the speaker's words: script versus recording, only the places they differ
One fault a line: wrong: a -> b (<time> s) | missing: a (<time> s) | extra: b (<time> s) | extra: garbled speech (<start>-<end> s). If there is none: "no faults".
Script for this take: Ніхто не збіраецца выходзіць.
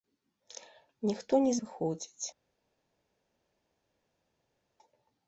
missing: збіраецца (1.5 s)